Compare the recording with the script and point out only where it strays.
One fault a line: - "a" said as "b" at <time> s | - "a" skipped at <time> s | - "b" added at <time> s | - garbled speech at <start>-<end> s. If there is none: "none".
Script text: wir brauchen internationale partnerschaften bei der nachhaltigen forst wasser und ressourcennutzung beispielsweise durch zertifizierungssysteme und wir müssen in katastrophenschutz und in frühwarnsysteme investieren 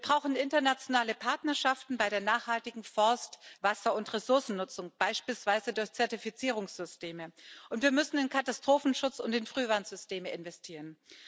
none